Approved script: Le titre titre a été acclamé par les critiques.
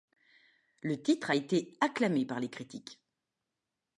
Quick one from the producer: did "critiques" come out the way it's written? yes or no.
yes